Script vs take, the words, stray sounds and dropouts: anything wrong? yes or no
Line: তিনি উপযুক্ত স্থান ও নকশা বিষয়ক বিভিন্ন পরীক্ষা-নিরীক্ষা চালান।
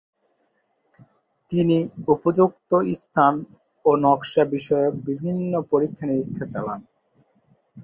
no